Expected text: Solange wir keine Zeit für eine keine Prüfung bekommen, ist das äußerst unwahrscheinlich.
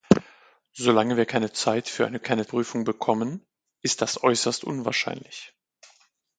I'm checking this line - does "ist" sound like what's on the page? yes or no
yes